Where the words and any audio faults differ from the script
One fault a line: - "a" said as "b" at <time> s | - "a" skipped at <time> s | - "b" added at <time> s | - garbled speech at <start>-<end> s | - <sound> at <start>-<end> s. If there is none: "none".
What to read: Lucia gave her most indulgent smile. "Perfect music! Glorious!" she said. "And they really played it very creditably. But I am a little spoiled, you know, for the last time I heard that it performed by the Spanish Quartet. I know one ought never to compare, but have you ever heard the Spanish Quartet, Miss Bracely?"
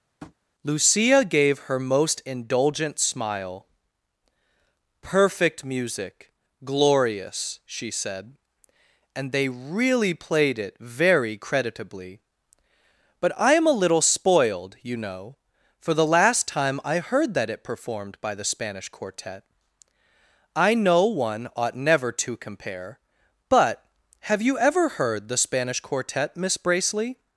- tap at 0.2-0.4 s